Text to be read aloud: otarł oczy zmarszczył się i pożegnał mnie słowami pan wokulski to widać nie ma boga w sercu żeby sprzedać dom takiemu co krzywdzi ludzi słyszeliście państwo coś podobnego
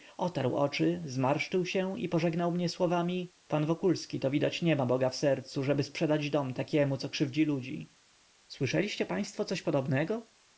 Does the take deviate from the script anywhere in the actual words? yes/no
no